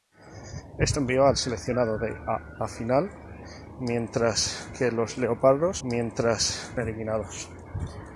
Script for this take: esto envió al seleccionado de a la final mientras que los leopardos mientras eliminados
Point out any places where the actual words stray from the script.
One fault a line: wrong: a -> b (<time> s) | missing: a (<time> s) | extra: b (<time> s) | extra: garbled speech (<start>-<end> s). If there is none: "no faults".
no faults